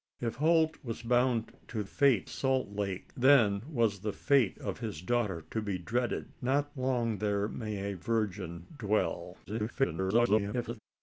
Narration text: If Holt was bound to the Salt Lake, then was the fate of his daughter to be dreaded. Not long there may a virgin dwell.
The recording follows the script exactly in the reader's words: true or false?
false